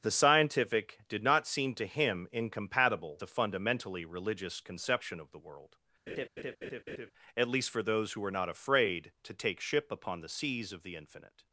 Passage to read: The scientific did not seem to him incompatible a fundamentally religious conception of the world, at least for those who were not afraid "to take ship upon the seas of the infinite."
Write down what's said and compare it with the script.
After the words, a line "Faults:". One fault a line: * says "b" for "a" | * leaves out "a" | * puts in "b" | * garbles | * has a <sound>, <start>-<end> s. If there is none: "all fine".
The scientific did not seem to him incompatible a fundamentally religious conception of the world, at least for those who were not afraid "to take ship upon the seas of the infinite."
Faults:
* has a laugh, 6.1-7.1 s